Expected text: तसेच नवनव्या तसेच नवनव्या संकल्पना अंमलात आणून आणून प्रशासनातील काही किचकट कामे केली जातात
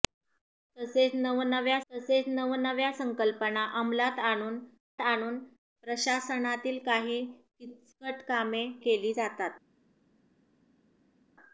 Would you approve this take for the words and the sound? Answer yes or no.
yes